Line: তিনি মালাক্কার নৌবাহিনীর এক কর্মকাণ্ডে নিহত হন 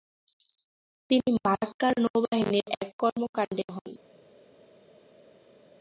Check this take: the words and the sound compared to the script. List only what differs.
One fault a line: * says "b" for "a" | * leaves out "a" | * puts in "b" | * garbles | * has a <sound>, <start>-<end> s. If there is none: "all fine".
* leaves out "নিহত"